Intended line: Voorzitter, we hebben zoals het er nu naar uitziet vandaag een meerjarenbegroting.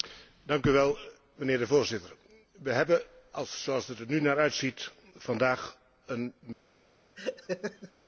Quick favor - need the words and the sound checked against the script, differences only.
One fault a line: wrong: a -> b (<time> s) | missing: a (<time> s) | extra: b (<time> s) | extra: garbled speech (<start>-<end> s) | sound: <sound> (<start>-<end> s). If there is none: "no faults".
sound: laugh (7.2-7.9 s)